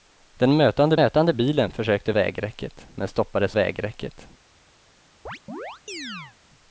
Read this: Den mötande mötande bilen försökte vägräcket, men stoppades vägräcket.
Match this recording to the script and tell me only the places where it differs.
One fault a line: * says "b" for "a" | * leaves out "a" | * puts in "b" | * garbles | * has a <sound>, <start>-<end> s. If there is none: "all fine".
* has a chirp, 5.3-6.4 s